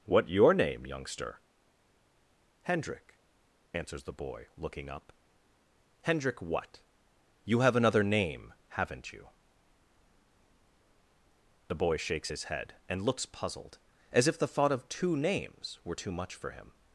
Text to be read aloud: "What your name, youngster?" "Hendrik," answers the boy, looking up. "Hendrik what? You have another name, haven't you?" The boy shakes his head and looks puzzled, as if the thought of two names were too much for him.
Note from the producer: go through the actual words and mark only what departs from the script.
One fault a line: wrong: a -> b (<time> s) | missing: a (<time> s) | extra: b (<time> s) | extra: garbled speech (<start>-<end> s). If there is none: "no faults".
no faults